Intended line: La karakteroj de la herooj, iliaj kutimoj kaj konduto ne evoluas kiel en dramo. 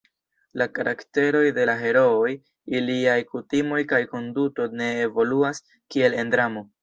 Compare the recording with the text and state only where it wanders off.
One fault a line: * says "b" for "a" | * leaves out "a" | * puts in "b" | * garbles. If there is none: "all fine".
all fine